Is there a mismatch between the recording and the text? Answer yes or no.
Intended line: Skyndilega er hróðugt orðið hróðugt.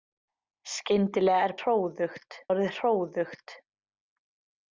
no